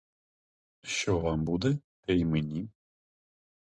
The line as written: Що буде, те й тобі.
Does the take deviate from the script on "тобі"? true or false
true